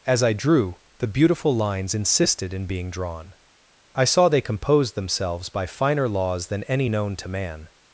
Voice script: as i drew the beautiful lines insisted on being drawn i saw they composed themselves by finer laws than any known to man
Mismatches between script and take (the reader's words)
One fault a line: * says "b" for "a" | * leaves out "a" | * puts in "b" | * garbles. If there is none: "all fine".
* says "in" for "on"